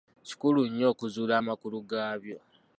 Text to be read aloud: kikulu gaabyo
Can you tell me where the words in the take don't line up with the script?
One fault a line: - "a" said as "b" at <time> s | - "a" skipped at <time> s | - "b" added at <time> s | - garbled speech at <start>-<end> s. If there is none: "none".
- "nnyo okuzuula amakulu" added at 0.7 s